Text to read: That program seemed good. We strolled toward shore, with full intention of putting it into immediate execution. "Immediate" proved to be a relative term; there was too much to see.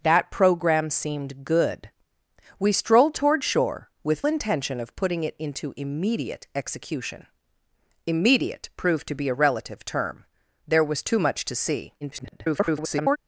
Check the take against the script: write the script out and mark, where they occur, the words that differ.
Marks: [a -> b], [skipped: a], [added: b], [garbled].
That program seemed good. We strolled toward shore, with [skipped: full] intention of putting it into immediate execution. "Immediate" proved to be a relative term; there was too much to see. [garbled]